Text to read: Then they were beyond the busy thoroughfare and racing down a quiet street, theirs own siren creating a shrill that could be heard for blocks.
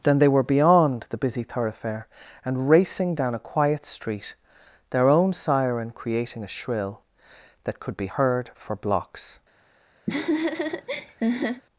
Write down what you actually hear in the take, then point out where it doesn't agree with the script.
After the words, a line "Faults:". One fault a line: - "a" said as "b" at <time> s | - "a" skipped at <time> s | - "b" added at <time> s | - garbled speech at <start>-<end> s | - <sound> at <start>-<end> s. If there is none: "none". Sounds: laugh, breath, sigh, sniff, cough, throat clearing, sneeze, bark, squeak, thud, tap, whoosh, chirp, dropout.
Then they were beyond the busy thoroughfare and racing down a quiet street, their own siren creating a shrill that could be heard for blocks.
Faults:
- "theirs" said as "their" at 4.9 s
- laugh at 10.1-11.6 s